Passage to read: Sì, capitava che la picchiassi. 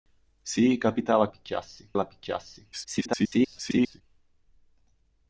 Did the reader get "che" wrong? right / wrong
wrong